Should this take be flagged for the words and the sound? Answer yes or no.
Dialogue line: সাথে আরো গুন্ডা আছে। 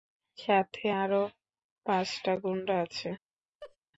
yes